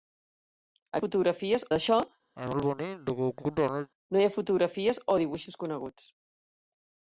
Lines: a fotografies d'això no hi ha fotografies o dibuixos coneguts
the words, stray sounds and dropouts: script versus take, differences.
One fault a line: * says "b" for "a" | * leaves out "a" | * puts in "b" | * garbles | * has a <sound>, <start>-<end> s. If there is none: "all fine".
* has a cough, 2.4-3.9 s